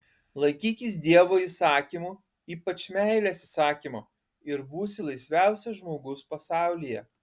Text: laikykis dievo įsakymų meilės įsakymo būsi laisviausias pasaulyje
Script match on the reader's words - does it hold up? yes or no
no